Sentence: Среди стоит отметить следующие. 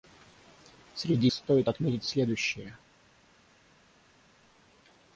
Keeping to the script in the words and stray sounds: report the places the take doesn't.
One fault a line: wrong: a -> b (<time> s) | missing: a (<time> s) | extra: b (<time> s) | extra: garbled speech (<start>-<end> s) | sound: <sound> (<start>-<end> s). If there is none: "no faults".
no faults